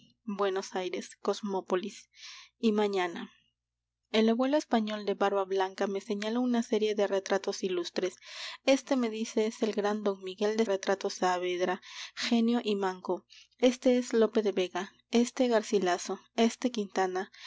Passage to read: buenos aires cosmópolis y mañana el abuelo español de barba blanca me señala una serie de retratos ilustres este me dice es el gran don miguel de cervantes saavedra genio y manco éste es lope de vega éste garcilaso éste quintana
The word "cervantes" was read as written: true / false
false